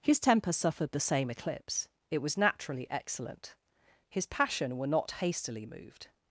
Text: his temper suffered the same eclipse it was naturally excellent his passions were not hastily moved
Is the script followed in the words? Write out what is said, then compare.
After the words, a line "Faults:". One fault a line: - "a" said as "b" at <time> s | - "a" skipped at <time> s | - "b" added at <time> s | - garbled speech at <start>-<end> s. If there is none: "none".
his temper suffered the same eclipse it was naturally excellent his passion were not hastily moved
Faults:
- "passions" said as "passion" at 4.2 s